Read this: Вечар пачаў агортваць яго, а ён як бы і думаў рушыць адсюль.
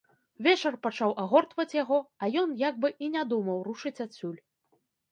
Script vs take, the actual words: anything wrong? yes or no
yes